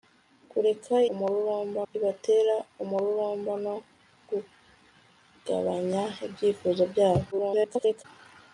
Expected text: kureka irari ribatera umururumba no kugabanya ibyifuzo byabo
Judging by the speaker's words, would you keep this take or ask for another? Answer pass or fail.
fail